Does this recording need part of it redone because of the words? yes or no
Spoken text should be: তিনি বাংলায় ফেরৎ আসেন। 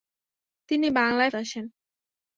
yes